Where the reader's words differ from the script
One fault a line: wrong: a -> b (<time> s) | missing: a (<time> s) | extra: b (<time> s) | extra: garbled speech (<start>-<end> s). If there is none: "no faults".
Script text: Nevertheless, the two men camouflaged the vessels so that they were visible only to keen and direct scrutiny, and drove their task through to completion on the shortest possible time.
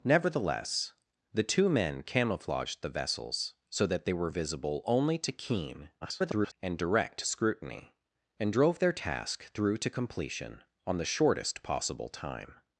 extra: garbled speech (6.0-6.5 s)